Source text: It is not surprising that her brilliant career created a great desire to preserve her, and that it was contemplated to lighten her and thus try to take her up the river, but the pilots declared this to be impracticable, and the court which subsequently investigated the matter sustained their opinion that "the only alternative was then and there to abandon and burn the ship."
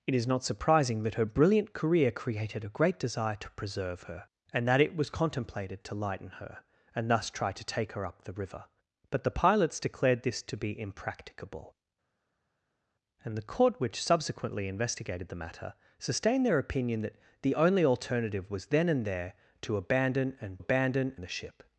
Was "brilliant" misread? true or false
false